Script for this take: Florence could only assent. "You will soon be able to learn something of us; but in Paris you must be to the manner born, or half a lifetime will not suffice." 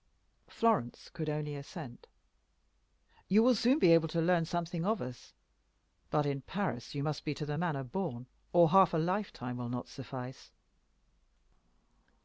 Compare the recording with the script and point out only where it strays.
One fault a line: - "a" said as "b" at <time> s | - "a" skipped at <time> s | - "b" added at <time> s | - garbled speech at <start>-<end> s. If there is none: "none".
none